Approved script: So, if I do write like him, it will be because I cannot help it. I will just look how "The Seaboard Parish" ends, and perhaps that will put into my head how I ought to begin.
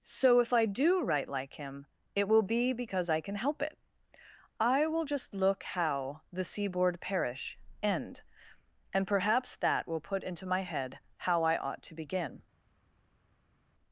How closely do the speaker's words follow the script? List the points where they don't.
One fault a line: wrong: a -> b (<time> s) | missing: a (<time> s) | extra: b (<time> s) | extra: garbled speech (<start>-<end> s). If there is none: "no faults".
wrong: cannot -> can (3.2 s)
wrong: ends -> end (7.8 s)